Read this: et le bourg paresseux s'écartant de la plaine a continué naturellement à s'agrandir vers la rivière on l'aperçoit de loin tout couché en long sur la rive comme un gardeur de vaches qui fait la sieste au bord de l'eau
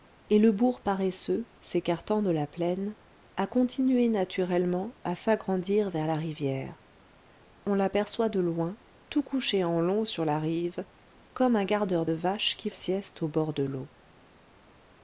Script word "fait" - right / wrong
wrong